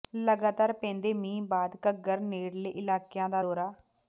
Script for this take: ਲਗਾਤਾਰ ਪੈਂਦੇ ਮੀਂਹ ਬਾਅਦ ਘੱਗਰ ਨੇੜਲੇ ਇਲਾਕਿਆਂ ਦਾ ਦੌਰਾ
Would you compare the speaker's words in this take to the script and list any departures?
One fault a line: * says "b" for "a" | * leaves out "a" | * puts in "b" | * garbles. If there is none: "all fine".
all fine